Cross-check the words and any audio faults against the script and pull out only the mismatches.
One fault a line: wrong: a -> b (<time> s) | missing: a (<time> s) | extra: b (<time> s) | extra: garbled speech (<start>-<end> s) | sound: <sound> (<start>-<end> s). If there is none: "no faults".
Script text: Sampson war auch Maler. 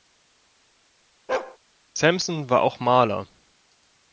sound: bark (1.3-1.6 s)